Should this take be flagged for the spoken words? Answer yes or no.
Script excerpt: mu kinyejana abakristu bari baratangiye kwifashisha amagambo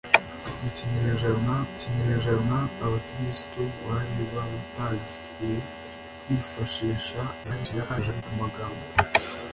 yes